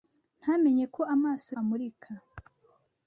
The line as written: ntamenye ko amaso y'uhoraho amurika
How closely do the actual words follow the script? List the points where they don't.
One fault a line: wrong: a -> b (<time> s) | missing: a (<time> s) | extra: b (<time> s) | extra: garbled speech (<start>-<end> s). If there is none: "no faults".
missing: y'uhoraho (1.5 s)